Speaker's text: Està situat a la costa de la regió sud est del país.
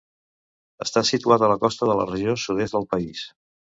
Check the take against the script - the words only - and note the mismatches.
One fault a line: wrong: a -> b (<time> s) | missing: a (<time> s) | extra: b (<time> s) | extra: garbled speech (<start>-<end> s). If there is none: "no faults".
no faults